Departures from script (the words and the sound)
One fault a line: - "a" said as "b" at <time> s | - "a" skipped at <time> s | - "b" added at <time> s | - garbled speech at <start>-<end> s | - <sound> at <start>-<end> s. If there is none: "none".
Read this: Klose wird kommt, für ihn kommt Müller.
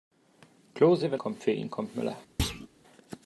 - thud at 2.4-2.7 s